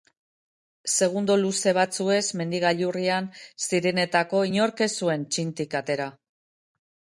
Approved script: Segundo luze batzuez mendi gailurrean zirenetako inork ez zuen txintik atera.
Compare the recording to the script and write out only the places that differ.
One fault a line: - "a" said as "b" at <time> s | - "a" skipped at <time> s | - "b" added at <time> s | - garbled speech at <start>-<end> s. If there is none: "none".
none